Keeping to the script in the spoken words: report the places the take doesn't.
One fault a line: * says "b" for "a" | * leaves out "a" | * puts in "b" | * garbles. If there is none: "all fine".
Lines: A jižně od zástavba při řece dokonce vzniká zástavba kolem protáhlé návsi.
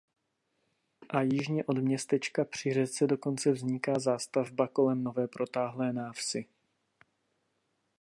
* says "městečka" for "zástavba"
* puts in "nové"